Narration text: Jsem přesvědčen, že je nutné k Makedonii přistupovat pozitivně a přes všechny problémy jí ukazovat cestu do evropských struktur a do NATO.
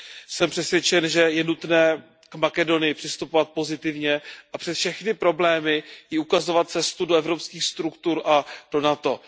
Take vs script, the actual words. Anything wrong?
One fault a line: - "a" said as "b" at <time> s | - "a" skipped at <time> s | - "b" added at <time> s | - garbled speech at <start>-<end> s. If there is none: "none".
none